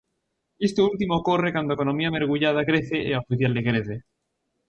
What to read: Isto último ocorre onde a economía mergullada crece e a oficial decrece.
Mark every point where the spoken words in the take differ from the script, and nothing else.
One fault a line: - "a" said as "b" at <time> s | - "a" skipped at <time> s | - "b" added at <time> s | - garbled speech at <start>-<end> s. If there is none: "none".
- "onde" said as "cando" at 1.6 s